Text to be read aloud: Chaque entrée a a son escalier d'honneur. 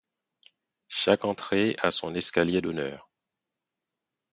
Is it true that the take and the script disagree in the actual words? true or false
true